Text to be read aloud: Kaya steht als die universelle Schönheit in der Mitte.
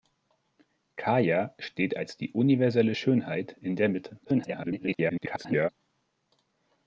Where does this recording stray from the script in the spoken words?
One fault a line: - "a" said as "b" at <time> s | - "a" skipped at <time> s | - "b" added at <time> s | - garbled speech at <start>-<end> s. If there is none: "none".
- garbled speech at 4.2-5.7 s